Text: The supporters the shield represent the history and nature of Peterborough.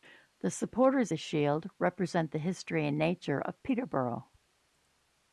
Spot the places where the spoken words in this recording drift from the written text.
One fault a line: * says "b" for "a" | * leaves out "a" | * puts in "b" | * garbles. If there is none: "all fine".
all fine